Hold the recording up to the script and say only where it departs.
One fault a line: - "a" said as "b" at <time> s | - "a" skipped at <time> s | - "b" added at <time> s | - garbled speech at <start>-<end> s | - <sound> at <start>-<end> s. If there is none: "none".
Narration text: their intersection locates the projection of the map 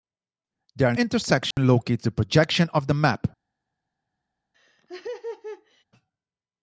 - dropout at 1.5-1.6 s
- laugh at 4.5-5.8 s